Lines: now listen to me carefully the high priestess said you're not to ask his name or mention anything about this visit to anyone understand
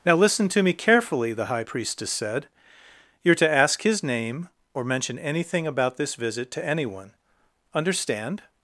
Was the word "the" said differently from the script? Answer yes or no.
no